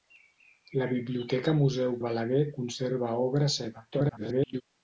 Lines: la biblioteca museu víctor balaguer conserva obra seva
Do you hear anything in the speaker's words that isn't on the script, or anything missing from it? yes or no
yes